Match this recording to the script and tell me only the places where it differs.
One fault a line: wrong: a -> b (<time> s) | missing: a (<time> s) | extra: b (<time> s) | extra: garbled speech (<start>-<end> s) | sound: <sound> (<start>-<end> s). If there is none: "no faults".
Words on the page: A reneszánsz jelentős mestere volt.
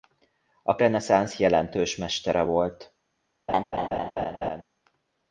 sound: laugh (3.5-4.6 s)